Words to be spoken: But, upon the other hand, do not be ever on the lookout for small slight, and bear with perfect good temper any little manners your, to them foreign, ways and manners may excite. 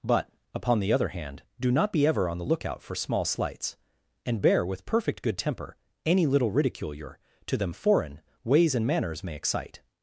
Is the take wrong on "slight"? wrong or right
wrong